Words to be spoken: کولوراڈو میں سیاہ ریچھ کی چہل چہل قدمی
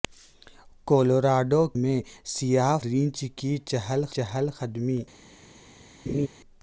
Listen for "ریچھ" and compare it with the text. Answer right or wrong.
right